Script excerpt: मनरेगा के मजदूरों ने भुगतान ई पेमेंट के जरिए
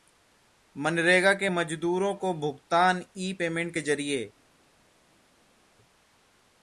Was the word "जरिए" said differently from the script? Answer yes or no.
no